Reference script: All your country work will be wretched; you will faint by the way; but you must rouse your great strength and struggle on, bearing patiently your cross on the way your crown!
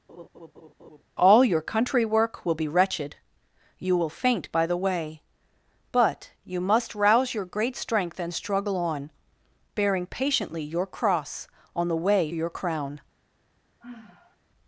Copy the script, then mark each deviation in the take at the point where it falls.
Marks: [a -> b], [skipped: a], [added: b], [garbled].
All your country work will be wretched; you will faint by the way; but you must rouse your great strength and struggle on, bearing patiently your cross on the way your crown!